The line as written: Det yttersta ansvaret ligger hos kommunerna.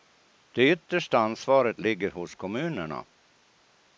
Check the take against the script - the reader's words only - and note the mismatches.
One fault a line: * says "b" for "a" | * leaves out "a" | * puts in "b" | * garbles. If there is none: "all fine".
all fine